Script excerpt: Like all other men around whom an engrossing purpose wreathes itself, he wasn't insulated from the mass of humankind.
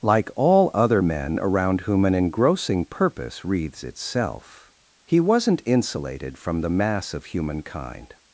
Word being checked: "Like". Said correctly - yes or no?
yes